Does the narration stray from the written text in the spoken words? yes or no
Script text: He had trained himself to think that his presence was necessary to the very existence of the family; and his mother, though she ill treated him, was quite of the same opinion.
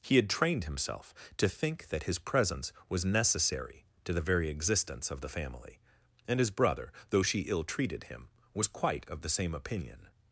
yes